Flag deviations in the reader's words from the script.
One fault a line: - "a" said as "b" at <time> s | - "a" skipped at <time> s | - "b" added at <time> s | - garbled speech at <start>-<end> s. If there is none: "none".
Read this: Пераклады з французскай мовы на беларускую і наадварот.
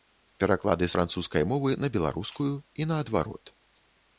none